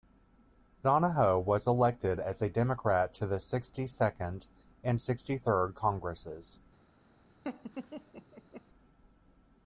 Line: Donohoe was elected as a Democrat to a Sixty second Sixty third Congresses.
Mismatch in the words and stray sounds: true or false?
true